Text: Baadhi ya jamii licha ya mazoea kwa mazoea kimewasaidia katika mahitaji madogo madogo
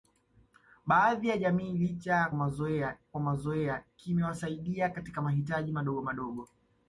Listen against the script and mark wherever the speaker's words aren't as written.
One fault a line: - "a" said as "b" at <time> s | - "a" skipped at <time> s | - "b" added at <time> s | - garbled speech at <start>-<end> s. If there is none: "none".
none